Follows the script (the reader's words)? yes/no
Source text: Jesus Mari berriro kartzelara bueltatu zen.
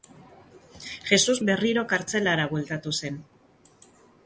no